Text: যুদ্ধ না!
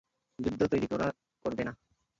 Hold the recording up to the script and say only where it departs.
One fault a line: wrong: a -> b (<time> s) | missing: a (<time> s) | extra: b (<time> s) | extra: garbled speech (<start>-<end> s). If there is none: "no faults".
extra: তৈরি করবে (0.7 s)